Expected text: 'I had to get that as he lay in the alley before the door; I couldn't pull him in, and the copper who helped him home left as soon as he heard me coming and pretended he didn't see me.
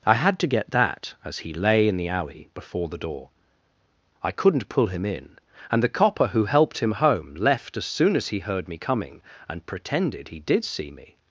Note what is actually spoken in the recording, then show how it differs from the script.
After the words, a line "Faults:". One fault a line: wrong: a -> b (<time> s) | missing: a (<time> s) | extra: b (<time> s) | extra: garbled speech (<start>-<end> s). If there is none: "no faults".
'I had to get that as he lay in the alley before the door; I couldn't pull him in, and the copper who helped him home left as soon as he heard me coming and pretended he did see me.
Faults:
wrong: didn't -> did (10.4 s)